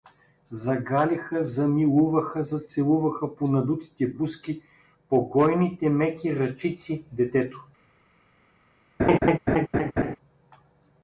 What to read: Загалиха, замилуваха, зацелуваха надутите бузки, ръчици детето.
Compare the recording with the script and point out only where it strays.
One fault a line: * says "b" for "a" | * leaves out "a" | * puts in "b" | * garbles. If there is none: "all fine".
* puts in "по"
* puts in "по гойните меки"